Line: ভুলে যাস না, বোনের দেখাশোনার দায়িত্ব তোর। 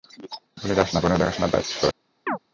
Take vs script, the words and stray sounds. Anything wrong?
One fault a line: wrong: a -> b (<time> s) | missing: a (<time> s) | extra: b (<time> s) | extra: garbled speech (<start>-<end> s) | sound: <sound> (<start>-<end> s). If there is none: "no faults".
sound: chirp (2.3-2.4 s)